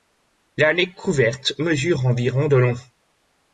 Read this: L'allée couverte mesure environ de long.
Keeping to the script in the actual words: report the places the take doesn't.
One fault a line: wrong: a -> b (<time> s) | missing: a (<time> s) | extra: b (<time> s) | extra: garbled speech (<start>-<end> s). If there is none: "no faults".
no faults